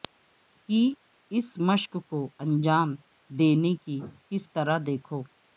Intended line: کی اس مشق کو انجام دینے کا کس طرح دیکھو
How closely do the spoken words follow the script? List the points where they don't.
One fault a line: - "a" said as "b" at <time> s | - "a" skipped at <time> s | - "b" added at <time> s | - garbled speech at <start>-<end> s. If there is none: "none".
- "کا" said as "کی" at 3.8 s